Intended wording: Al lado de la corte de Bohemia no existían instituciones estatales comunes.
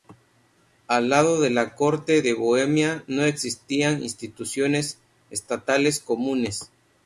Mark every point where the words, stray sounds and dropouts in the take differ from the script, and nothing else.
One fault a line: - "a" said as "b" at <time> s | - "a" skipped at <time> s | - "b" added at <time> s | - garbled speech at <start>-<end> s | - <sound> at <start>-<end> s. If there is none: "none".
none